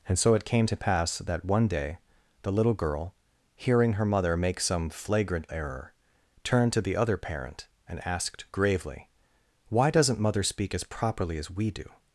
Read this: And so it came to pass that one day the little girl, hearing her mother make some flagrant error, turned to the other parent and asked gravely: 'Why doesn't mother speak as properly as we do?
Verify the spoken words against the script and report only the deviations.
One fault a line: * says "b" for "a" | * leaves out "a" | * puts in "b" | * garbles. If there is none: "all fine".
all fine